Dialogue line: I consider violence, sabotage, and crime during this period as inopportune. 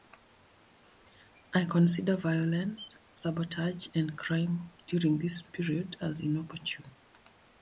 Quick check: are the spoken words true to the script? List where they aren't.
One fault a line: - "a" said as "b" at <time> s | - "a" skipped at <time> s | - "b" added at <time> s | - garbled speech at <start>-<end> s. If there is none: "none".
none